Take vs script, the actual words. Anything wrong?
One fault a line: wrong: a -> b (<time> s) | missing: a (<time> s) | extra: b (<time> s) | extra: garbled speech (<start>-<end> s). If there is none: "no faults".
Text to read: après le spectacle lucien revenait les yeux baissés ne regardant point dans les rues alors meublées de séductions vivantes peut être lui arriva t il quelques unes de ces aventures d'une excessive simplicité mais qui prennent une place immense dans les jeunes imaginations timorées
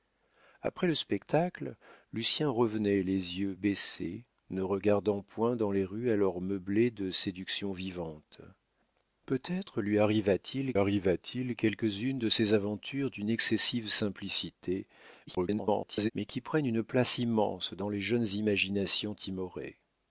extra: arriva t il (10.8 s)
extra: garbled speech (15.3-16.1 s)